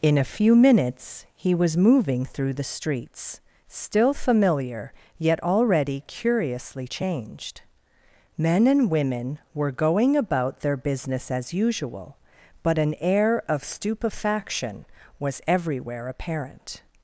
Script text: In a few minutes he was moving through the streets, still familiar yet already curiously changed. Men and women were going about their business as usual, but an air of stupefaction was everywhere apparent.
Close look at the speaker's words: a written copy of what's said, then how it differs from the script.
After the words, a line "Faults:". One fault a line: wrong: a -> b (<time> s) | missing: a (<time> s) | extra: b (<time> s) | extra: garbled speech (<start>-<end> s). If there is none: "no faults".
In a few minutes he was moving through the streets, still familiar yet already curiously changed. Men and women were going about their business as usual, but an air of stupefaction was everywhere apparent.
Faults:
no faults